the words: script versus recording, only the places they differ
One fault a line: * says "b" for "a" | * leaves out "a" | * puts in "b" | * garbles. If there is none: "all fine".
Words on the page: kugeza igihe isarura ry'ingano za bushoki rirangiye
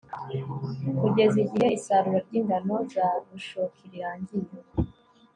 all fine